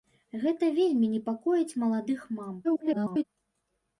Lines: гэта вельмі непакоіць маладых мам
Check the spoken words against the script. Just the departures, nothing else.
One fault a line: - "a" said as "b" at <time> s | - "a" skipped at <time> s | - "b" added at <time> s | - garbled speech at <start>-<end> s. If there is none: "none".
- garbled speech at 2.6-3.2 s